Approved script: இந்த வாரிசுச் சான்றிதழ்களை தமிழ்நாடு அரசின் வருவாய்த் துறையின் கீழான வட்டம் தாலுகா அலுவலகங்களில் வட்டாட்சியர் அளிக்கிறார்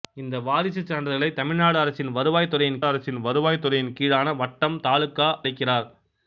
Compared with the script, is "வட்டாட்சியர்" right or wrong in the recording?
wrong